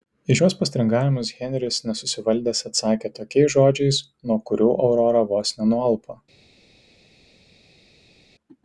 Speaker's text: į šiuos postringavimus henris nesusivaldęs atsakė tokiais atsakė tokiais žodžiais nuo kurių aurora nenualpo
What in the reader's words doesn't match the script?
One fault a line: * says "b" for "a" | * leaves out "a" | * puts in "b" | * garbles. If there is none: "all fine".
* leaves out "atsakė tokiais"
* puts in "vos"